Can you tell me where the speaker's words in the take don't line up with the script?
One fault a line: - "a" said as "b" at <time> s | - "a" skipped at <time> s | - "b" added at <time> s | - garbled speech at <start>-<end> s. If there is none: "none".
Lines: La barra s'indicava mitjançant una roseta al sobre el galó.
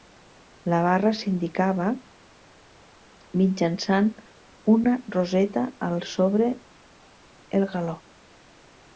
none